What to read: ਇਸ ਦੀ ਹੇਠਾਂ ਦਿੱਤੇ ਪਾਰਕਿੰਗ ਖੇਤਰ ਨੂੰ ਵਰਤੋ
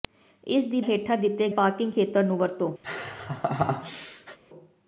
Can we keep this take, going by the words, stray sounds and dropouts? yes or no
no